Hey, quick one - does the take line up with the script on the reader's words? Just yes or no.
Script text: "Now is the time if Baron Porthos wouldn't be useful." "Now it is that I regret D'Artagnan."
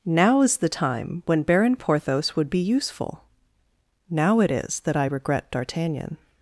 no